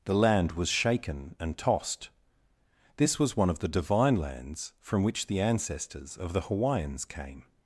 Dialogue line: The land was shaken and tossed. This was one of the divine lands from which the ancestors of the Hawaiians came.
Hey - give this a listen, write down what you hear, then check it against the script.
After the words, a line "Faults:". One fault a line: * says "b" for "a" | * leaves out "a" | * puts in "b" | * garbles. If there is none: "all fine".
The land was shaken and tossed. This was one of the divine lands from which the ancestors of the Hawaiians came.
Faults:
all fine